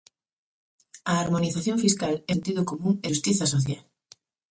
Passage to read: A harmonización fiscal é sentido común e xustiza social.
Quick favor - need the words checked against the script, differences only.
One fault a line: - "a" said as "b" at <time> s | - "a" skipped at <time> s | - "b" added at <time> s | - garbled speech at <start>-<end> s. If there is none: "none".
none